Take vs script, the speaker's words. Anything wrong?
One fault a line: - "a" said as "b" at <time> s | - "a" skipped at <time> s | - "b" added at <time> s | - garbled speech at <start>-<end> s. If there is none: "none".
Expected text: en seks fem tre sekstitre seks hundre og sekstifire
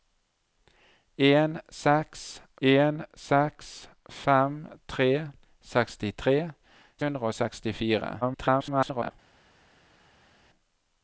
- "en seks" added at 2.7 s
- "seks" skipped at 6.4 s
- garbled speech at 8.2-9.1 s